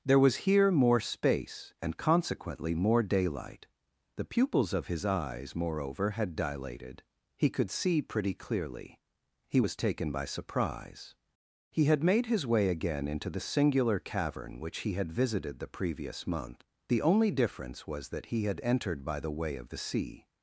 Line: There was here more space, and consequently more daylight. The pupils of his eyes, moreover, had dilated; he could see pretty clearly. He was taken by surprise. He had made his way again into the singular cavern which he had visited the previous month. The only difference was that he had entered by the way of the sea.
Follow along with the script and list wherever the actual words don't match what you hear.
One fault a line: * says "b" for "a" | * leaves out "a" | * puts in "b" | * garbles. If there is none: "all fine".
all fine